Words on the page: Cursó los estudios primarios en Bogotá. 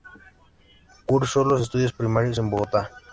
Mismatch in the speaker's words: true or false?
false